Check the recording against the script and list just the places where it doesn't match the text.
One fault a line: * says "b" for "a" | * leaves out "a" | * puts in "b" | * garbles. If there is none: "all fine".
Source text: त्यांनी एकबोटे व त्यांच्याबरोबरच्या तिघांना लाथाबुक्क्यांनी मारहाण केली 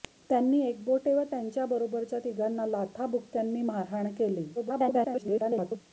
* garbles